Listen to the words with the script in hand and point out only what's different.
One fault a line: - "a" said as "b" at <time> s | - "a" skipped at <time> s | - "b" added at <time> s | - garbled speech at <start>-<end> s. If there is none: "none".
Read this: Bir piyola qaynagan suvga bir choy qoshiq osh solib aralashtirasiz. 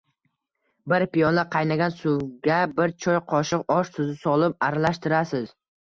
- "tuzi" added at 4.0 s